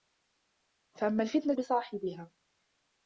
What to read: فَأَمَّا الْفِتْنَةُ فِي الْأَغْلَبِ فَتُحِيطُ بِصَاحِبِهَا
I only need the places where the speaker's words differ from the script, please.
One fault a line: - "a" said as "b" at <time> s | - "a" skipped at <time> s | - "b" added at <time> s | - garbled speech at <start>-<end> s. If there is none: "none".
- "فِي الْأَغْلَبِ فَتُحِيطُ" skipped at 1.6 s